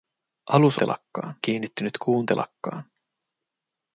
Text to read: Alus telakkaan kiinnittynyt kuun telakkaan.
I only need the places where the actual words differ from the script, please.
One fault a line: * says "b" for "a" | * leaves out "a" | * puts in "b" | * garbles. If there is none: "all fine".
all fine